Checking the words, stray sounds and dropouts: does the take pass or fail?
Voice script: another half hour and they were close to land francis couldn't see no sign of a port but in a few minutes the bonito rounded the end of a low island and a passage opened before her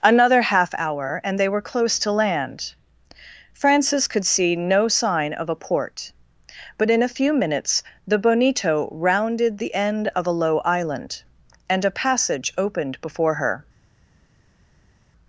fail